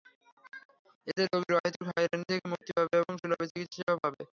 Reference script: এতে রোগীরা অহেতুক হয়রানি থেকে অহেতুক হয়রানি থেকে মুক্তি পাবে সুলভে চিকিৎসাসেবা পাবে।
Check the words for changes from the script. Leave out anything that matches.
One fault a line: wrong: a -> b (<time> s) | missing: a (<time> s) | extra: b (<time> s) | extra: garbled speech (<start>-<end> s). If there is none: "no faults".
missing: অহেতুক হয়রানি থেকে (2.5 s)
extra: এবং (3.0 s)